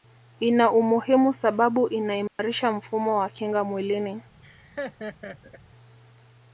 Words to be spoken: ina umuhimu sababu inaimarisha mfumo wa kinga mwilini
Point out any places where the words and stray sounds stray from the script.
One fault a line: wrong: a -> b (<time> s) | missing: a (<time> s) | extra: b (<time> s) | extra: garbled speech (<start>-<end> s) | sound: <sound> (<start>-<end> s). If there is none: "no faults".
sound: dropout (2.3-2.4 s)
sound: laugh (4.4-5.6 s)